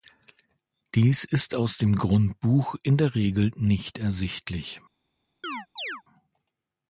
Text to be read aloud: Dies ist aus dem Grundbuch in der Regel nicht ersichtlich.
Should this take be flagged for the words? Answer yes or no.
no